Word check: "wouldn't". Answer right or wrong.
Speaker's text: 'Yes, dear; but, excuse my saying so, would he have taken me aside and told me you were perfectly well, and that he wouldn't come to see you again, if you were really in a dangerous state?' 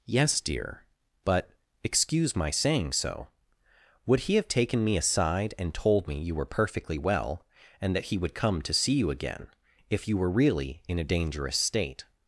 wrong